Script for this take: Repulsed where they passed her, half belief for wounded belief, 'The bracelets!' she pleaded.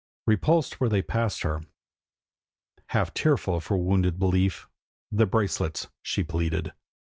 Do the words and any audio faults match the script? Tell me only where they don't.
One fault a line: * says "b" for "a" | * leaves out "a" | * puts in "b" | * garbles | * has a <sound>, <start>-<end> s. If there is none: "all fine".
* says "tearful" for "belief"